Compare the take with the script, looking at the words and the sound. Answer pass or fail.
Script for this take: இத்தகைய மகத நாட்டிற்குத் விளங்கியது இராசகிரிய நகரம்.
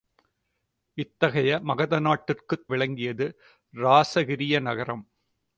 pass